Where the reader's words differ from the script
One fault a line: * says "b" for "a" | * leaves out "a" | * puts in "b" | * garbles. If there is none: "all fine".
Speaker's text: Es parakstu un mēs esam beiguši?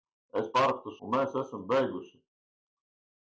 all fine